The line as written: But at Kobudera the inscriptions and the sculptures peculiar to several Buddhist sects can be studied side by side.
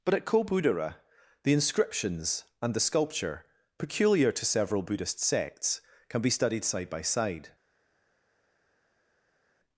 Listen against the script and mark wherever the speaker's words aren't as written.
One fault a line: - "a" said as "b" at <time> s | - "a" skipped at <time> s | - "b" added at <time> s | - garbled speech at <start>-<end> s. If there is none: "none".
- "sculptures" said as "sculpture" at 2.8 s